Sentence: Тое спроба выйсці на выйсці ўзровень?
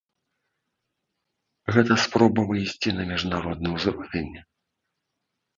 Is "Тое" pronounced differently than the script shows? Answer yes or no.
yes